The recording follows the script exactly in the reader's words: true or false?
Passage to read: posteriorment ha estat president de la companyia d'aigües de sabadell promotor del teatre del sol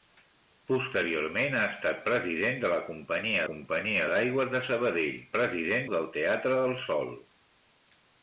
false